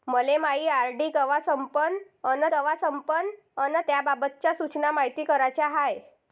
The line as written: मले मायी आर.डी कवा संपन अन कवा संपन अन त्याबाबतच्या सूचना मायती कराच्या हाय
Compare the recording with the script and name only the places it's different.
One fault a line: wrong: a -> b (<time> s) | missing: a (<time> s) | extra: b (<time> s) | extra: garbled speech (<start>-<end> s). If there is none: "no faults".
no faults